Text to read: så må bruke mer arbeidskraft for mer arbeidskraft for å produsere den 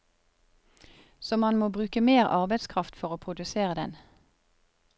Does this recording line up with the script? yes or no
no